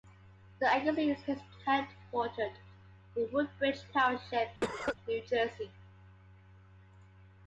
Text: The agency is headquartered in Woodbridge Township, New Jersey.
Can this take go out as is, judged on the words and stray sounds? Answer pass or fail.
fail